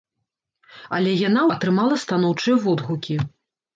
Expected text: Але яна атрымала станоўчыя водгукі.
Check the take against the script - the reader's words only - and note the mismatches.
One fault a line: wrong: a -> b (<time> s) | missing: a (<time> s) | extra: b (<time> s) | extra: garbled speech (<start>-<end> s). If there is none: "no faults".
no faults